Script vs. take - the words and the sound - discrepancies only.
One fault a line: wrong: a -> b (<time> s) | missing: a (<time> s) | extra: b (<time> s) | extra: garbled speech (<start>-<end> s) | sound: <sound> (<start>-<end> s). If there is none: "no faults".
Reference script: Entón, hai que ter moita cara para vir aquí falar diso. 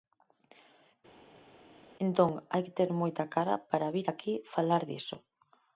no faults